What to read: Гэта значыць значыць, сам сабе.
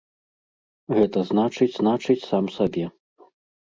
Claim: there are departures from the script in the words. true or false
false